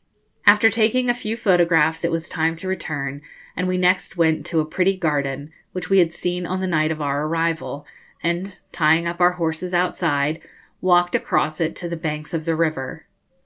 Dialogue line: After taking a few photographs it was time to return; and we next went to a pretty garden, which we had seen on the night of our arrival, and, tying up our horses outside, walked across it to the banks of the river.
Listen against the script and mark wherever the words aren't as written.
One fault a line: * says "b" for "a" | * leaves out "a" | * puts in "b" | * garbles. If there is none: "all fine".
all fine